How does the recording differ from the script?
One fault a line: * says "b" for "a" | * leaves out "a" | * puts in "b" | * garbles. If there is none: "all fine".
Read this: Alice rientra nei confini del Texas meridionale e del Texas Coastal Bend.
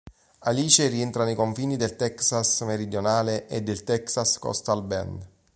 all fine